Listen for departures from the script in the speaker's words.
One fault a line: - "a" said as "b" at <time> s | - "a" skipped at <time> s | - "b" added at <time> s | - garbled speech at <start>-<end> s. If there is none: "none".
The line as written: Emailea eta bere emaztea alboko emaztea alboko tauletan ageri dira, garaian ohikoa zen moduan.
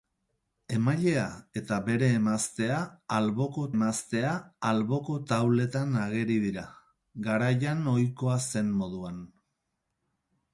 none